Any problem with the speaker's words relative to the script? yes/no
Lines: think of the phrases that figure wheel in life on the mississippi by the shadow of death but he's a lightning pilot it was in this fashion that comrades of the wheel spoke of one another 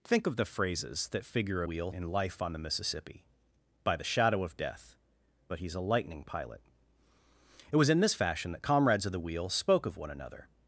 no